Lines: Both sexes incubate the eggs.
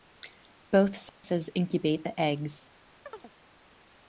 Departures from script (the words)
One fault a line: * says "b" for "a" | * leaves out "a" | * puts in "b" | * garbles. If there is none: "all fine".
all fine